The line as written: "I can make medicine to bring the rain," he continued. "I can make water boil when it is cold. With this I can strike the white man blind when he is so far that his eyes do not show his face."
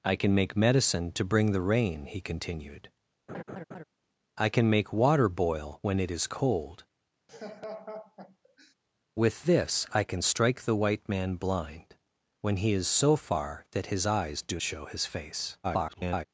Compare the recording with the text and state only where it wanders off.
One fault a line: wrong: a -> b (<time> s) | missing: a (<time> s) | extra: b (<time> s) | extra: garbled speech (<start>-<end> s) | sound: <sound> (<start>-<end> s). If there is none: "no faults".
sound: laugh (3.3-3.8 s)
sound: laugh (7.3-8.7 s)
missing: not (14.6 s)
extra: garbled speech (15.6-16.2 s)